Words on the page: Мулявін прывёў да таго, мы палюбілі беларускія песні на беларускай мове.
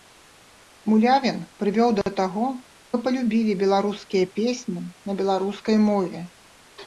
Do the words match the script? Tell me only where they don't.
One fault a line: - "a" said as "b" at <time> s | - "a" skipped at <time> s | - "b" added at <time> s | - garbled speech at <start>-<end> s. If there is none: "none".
none